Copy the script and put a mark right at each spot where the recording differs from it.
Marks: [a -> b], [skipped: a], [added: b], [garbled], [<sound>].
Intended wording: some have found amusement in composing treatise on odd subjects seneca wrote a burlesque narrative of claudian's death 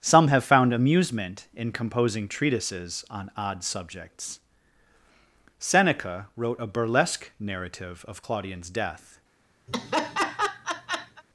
some have found amusement in composing [treatise -> treatises] on odd subjects seneca wrote a burlesque narrative of claudian's death [laugh]